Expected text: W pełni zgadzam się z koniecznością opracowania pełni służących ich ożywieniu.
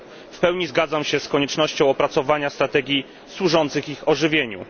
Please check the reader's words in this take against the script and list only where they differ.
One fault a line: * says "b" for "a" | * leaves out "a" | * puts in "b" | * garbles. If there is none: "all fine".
* says "strategii" for "pełni"